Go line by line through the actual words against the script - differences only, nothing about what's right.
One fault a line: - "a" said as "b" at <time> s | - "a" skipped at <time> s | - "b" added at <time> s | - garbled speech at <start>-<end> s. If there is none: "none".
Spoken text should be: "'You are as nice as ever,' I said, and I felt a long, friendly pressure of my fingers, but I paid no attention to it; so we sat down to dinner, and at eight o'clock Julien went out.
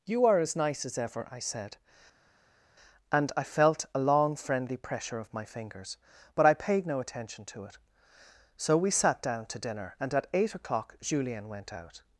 none